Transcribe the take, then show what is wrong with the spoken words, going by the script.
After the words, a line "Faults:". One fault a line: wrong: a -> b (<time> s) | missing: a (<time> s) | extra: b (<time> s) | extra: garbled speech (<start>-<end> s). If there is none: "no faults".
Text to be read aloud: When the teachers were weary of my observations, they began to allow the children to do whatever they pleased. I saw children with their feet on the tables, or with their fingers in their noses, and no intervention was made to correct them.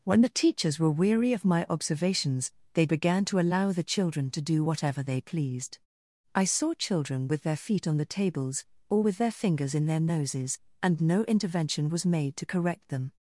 When the teachers were weary of my observations, they began to allow the children to do whatever they pleased. I saw children with their feet on the tables, or with their fingers in their noses, and no intervention was made to correct them.
Faults:
no faults